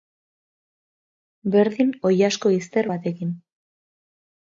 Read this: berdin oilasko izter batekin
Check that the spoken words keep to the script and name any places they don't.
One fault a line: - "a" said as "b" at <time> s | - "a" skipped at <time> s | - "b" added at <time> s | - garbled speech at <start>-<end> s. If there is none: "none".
none